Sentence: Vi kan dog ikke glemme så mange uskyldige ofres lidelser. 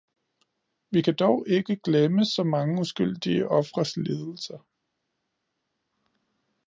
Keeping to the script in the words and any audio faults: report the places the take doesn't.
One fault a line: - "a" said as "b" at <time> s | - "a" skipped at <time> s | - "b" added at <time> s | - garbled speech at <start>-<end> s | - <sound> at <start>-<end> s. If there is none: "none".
none